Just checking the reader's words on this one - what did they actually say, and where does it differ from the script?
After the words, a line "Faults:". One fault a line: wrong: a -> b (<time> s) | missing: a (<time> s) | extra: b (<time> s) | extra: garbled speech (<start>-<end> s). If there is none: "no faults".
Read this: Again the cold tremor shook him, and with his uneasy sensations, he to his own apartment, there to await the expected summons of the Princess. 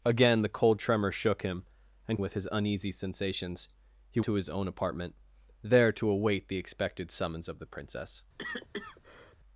Again the cold tremor shook him, and with his uneasy sensations, he to his own apartment, there to await the expected summons of the Princess.
Faults:
no faults